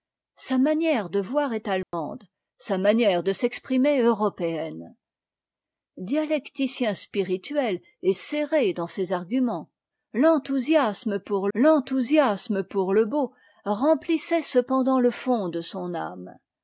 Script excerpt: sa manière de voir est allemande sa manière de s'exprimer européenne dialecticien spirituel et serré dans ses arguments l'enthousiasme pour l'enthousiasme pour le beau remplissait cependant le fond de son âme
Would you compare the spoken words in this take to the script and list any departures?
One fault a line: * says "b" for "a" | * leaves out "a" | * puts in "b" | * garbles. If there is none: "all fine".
all fine